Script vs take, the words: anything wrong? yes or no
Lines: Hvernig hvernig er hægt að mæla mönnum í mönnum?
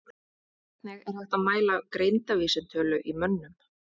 yes